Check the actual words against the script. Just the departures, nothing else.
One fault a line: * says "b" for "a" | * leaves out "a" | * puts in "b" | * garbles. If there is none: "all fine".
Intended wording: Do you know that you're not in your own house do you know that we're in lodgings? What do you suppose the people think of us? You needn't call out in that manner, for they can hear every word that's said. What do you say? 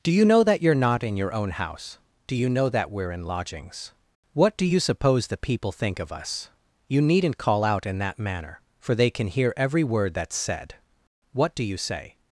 all fine